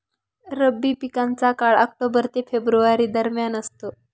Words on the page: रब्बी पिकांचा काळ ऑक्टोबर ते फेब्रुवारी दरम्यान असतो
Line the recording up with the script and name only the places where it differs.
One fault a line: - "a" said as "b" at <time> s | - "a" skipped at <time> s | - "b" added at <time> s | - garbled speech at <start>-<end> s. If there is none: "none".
none